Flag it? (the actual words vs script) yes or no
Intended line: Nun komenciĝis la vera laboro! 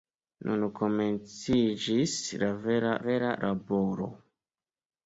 yes